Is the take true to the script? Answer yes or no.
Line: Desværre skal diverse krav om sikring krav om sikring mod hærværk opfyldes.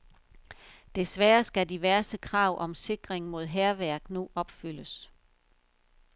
no